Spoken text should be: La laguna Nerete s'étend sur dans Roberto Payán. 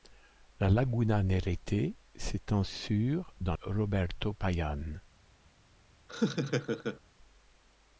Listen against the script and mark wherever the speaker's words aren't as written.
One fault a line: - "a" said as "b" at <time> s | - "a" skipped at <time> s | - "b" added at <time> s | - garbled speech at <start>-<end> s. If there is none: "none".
none